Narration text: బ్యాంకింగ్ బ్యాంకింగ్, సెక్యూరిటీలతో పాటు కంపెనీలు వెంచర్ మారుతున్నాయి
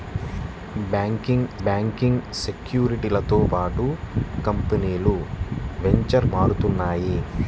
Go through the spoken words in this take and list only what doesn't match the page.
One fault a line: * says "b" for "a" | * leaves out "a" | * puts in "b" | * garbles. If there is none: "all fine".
all fine